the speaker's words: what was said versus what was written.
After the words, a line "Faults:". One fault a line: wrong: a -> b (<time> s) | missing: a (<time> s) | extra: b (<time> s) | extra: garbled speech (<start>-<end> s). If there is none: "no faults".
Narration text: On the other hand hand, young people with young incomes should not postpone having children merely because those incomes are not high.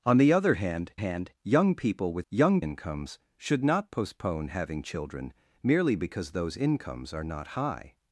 On the other hand hand, young people with young incomes should not postpone having children merely because those incomes are not high.
Faults:
no faults